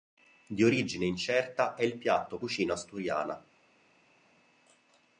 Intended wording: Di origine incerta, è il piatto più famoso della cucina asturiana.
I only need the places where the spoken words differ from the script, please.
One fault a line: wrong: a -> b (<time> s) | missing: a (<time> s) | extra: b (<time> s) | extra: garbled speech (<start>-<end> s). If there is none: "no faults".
missing: più famoso della (2.4 s)